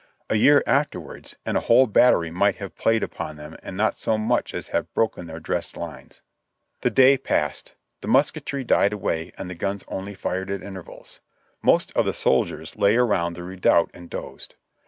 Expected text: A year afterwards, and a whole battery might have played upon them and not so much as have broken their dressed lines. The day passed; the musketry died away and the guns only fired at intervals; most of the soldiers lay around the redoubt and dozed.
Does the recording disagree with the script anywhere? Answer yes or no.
no